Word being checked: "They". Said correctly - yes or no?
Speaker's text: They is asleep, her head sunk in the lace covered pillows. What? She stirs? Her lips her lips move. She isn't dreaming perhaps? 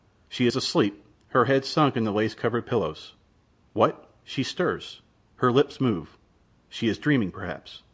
no